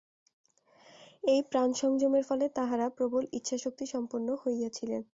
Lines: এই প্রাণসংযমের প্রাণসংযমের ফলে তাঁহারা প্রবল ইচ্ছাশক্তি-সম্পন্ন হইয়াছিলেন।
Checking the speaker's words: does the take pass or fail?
fail